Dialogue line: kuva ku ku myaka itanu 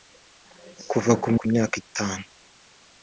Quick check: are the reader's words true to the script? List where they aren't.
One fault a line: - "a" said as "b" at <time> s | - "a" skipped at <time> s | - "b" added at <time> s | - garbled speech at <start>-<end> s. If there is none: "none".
none